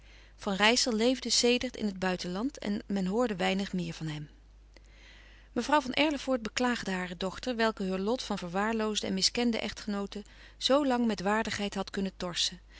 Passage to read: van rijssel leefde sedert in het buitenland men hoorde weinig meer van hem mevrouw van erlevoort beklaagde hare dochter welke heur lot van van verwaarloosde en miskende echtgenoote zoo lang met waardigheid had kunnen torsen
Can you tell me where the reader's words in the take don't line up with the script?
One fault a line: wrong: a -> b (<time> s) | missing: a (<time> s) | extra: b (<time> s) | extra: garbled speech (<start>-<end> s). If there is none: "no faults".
extra: en (2.6 s)
missing: van (8.4 s)